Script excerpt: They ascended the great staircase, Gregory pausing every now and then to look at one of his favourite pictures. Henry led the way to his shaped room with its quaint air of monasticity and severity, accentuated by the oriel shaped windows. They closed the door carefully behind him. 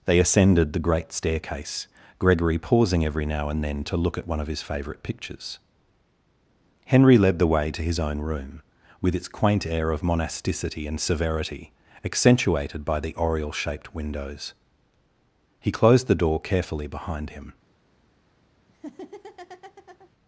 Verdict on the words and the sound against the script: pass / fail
fail